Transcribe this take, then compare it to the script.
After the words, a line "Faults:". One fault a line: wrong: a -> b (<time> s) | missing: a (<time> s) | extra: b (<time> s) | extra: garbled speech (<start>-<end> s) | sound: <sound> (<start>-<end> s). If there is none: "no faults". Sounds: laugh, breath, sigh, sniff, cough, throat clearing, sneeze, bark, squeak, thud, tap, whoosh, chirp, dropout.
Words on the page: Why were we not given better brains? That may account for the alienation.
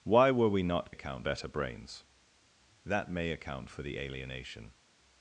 Why were we not account better brains? That may account for the alienation.
Faults:
wrong: given -> account (0.9 s)